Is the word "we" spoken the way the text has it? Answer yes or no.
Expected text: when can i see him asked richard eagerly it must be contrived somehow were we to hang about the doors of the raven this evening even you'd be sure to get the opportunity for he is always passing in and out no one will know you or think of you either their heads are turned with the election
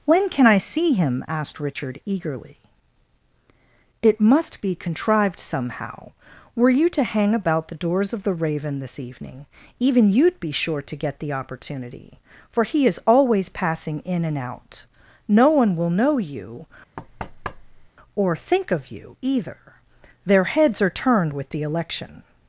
no